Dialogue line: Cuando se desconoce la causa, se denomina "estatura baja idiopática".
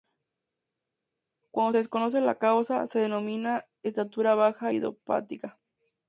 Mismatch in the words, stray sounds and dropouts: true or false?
false